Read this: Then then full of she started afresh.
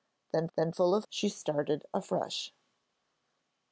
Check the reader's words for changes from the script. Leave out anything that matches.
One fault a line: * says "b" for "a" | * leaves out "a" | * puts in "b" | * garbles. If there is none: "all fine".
all fine